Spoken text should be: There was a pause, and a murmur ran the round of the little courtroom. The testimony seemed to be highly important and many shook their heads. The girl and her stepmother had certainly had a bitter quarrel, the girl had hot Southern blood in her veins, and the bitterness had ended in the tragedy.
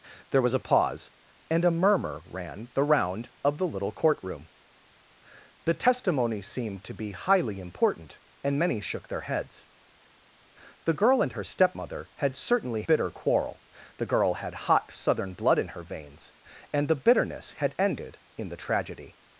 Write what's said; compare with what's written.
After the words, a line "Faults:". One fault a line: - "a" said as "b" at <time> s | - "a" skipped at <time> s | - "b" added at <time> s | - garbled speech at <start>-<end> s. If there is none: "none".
There was a pause, and a murmur ran the round of the little courtroom. The testimony seemed to be highly important and many shook their heads. The girl and her stepmother had certainly bitter quarrel, the girl had hot Southern blood in her veins, and the bitterness had ended in the tragedy.
Faults:
- "had a" skipped at 12.8 s